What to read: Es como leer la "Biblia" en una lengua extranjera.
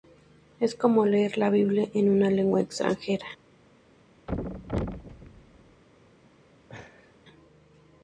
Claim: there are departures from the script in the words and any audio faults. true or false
true